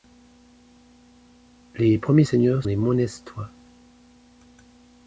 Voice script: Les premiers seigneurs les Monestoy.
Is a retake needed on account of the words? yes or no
no